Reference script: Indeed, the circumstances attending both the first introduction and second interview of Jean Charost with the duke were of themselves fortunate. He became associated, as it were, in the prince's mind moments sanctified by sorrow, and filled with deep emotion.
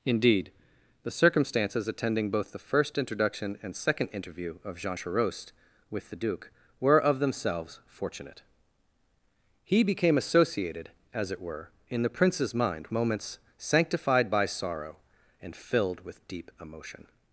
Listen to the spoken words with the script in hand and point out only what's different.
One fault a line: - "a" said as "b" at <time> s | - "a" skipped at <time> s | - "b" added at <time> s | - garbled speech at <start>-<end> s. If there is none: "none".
none